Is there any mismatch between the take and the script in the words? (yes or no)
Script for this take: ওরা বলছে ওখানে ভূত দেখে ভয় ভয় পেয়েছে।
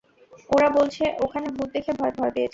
no